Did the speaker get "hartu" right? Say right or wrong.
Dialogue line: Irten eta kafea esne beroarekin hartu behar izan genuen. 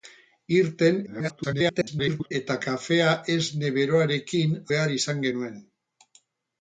wrong